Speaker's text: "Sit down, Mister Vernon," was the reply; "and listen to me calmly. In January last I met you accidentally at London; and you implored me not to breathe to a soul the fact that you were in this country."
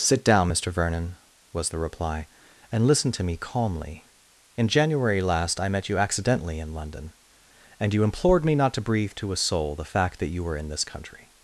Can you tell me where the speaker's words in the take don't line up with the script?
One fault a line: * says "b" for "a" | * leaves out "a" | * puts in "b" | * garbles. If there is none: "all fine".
* says "in" for "at"